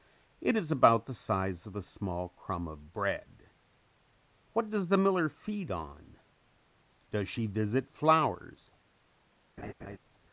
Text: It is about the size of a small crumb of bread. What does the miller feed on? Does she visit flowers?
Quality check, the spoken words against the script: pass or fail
pass